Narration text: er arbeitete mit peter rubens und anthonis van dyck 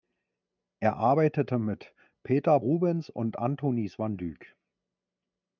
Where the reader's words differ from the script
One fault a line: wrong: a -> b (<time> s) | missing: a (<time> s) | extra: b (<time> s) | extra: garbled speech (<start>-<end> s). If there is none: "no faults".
no faults